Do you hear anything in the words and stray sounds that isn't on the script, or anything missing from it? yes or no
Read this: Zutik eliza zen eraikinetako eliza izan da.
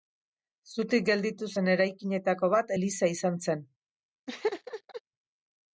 yes